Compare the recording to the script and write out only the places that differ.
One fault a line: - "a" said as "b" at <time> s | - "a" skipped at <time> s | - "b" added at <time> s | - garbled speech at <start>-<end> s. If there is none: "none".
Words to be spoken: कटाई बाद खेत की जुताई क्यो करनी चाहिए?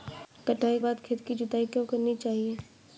none